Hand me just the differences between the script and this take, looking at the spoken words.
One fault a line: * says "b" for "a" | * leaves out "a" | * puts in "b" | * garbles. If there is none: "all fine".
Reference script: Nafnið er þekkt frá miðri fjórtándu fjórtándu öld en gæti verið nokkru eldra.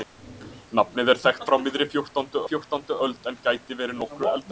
all fine